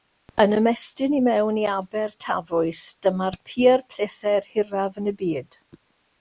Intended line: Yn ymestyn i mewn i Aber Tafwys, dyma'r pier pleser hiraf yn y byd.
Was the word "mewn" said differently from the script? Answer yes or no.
no